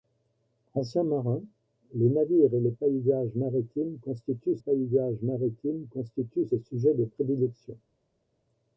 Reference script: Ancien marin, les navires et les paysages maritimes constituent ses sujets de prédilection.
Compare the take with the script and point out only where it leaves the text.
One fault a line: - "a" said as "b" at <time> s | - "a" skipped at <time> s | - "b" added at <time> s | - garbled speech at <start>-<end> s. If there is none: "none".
- "paysages maritimes constituent" added at 4.6 s